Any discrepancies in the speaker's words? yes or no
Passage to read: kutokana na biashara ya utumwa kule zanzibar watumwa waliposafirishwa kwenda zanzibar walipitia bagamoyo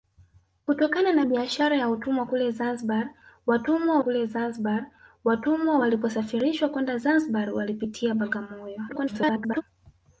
yes